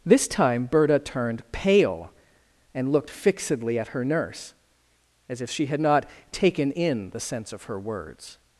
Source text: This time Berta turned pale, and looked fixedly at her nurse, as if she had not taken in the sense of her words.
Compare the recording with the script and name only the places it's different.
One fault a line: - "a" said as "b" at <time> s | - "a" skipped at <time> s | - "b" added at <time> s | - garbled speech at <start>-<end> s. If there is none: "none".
none